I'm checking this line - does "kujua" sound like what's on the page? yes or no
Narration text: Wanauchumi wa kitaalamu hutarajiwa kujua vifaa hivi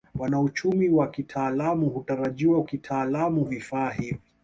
no